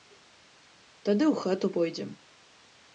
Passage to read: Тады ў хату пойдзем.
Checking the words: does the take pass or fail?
pass